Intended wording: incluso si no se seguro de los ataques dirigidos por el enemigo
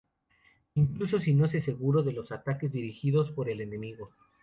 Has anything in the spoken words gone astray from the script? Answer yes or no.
no